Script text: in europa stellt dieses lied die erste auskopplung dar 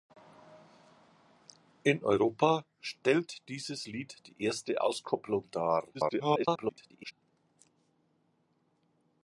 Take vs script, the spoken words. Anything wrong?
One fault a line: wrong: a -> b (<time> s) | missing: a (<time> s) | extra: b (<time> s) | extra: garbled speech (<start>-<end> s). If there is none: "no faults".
extra: garbled speech (5.9-7.1 s)